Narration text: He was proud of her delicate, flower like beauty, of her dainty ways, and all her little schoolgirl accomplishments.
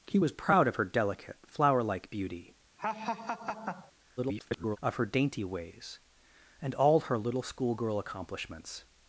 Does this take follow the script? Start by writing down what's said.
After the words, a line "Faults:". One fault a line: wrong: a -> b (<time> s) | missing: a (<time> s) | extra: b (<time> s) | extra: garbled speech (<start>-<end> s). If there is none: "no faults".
He was proud of her delicate, flower like beauty, [garbled] of her dainty ways, and all her little schoolgirl accomplishments.
Faults:
extra: garbled speech (4.2-4.8 s)